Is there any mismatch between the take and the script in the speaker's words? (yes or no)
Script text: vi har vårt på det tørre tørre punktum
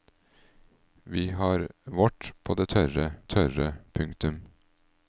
no